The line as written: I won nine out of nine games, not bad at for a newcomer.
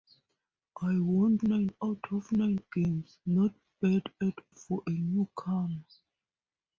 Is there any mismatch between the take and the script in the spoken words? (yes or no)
no